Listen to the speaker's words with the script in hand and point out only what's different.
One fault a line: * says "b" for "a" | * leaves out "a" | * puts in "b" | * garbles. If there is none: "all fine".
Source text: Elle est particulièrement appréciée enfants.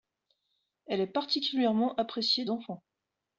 all fine